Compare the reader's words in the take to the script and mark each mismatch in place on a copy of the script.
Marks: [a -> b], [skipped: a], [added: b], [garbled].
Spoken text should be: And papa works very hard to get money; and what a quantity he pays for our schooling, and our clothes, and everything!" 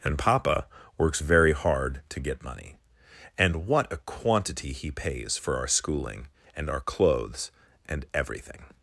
And papa works very hard to get money; and what a quantity he pays for our schooling, and our clothes, and everything!"